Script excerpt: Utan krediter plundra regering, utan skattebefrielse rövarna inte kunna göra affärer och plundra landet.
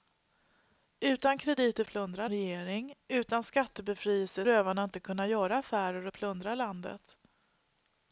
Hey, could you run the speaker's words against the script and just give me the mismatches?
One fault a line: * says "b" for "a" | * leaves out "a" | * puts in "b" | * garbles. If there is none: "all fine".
all fine